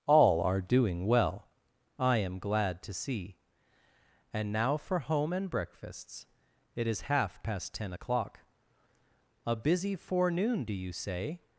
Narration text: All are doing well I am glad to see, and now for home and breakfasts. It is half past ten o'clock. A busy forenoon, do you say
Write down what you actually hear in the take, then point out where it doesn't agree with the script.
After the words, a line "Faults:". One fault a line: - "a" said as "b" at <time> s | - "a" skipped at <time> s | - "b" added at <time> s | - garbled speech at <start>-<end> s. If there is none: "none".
All are doing well I am glad to see, and now for home and breakfasts. It is half past ten o'clock. A busy forenoon, do you say
Faults:
none